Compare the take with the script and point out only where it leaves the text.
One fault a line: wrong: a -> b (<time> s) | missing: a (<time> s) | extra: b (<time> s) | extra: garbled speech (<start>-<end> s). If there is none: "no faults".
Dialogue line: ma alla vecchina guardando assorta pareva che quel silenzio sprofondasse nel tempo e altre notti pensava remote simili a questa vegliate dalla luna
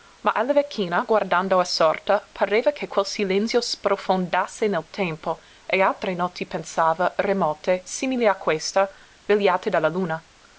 no faults